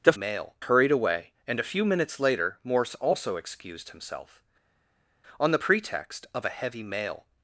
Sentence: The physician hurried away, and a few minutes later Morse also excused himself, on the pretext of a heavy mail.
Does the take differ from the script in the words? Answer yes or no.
yes